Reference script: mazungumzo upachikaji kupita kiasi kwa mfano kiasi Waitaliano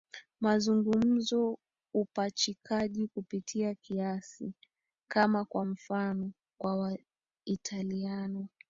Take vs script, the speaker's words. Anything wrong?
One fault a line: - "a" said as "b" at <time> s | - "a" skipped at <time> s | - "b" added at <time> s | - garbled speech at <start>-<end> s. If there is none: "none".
- "kama" added at 5.1 s
- "kiasi" said as "kwa" at 6.6 s